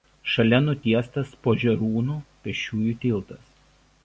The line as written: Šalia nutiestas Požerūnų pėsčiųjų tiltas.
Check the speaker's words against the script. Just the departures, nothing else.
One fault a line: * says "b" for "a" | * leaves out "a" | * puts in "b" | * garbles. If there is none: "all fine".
all fine